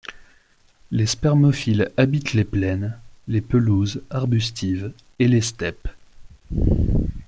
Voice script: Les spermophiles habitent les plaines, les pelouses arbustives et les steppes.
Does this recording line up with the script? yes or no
yes